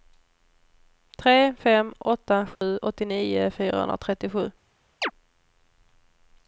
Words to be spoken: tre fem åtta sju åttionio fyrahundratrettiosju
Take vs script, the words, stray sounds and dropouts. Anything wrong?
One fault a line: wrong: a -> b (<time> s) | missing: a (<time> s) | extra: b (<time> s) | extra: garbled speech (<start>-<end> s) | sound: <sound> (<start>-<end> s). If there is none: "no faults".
sound: dropout (2.6-2.6 s)
sound: chirp (5.0-5.1 s)